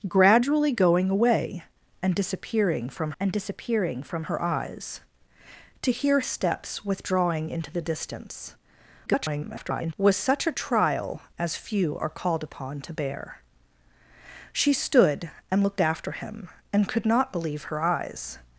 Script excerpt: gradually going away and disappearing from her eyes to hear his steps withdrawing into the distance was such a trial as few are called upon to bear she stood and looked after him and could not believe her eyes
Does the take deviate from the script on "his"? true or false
true